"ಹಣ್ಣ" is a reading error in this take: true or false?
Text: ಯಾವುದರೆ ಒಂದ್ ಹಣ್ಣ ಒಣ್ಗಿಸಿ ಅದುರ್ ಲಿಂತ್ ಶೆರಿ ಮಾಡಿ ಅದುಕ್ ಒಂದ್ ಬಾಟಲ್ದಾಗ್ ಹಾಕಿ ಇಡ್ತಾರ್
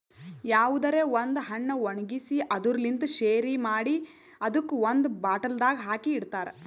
false